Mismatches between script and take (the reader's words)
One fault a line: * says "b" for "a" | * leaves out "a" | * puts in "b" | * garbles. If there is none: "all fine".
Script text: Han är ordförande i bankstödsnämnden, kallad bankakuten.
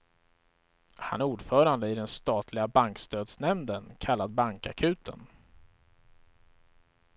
* puts in "den statliga"